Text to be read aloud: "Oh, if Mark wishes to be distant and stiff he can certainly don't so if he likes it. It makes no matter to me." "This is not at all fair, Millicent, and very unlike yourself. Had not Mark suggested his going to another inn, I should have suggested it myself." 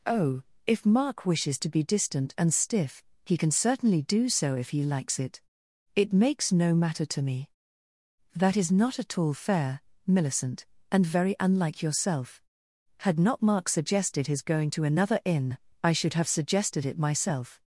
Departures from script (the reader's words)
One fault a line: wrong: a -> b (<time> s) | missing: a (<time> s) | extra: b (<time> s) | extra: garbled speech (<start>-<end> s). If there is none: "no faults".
wrong: don't -> do (4.0 s)
wrong: This -> That (8.3 s)